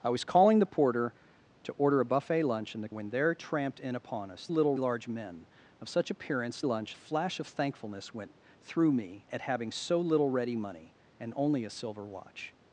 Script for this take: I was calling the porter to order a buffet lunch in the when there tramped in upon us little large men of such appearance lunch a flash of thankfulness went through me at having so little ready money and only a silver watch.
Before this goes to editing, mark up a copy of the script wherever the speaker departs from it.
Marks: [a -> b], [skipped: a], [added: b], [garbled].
I was calling the porter to order a buffet lunch in the when there tramped in upon us little large men of such appearance lunch a flash of thankfulness went through me at having so little ready money and only a silver watch.